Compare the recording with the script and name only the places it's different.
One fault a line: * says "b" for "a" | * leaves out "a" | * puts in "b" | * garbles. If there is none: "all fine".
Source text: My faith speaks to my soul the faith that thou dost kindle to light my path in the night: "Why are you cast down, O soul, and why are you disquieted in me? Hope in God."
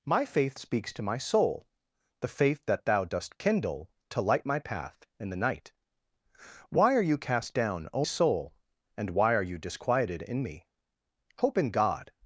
all fine